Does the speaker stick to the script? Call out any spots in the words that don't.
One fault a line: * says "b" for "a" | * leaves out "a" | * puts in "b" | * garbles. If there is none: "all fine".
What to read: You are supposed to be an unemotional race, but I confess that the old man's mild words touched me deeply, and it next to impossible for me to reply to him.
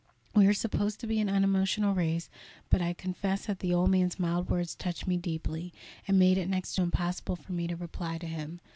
* says "We" for "You"
* puts in "made"